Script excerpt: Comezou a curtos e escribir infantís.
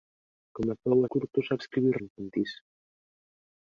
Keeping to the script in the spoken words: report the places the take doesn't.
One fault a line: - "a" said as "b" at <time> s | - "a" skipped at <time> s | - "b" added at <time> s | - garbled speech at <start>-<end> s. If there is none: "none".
none